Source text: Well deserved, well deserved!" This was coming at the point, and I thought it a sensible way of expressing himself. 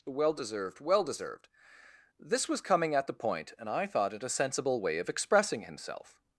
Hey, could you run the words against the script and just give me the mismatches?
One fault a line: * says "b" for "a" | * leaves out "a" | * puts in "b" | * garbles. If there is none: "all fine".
all fine